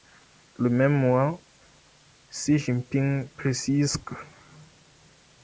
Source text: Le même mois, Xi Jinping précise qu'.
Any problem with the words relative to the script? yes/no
no